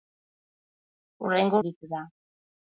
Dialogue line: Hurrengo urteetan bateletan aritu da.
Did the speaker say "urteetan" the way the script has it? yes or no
no